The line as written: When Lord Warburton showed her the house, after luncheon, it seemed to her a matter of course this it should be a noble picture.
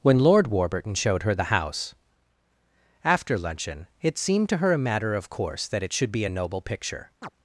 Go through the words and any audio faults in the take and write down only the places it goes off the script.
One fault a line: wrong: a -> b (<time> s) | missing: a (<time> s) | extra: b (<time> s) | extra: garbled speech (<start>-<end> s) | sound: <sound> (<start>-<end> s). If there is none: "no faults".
wrong: this -> that (5.7 s)
sound: chirp (7.2-7.3 s)